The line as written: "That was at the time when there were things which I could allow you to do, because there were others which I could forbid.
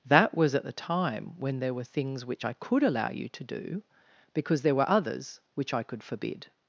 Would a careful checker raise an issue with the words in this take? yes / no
no